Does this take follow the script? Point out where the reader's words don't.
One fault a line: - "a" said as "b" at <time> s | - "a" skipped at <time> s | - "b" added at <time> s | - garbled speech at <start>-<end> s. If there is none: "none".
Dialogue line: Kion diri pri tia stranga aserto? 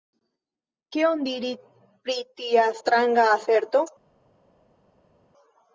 none